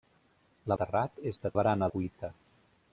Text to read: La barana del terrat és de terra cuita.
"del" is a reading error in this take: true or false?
true